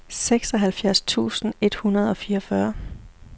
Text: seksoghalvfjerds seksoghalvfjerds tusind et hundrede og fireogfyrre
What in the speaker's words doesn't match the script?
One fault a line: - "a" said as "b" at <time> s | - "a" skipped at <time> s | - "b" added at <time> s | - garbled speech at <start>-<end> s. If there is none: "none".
- "seksoghalvfjerds" skipped at 1.0 s